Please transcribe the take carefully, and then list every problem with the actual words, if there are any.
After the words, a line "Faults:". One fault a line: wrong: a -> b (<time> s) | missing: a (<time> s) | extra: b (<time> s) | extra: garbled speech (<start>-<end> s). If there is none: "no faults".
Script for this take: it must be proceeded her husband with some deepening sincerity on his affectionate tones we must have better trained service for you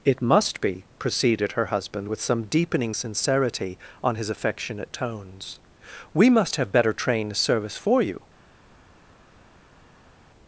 it must be proceeded her husband with some deepening sincerity on his affectionate tones we must have better trained service for you
Faults:
no faults